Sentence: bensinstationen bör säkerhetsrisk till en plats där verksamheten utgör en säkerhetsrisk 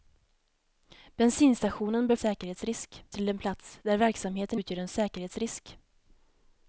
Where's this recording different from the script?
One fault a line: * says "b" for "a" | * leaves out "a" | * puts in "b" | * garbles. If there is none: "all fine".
all fine